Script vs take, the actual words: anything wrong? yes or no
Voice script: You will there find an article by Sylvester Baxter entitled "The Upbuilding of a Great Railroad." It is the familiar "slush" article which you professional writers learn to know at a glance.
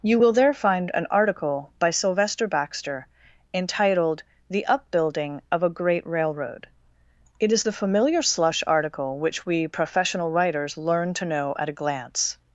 yes